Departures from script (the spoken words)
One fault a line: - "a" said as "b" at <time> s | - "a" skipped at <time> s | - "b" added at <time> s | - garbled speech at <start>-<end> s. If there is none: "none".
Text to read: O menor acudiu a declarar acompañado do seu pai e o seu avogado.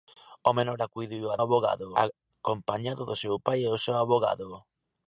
- "declarar" said as "avogado" at 1.4 s